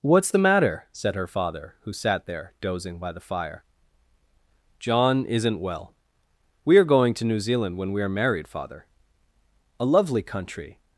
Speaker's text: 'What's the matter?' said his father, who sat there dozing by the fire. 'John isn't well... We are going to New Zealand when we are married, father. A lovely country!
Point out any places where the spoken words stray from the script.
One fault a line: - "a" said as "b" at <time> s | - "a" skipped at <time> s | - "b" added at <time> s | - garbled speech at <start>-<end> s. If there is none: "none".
- "his" said as "her" at 1.1 s